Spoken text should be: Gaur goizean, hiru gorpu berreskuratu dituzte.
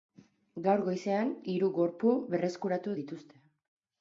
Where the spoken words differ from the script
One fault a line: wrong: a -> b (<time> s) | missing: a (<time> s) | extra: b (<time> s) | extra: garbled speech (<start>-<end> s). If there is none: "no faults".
no faults